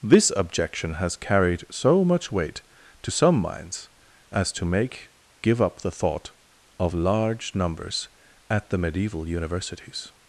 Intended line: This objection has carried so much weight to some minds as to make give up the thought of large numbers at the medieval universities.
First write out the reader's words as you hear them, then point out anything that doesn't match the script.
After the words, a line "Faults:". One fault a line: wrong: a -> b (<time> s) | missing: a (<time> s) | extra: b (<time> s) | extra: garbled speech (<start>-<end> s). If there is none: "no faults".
This objection has carried so much weight to some minds as to make give up the thought of large numbers at the medieval universities.
Faults:
no faults